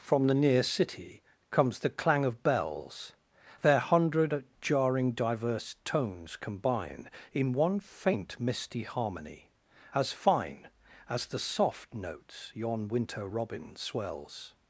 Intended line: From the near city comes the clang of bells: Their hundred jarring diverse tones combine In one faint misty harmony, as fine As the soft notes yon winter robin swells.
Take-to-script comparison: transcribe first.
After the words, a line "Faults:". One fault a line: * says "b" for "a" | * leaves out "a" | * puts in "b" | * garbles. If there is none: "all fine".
From the near city comes the clang of bells: Their hundred jarring diverse tones combine In one faint misty harmony, as fine As the soft notes yon winter robin swells.
Faults:
all fine